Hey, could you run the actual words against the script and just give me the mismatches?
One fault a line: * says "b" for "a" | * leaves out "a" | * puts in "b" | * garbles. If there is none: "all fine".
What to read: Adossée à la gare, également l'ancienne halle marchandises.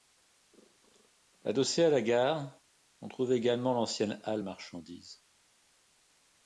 * puts in "on trouve"